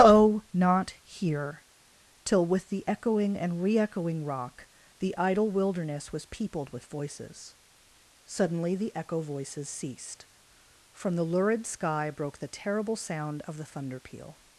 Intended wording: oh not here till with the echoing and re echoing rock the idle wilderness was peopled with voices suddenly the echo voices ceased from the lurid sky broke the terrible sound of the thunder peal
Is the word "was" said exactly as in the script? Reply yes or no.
yes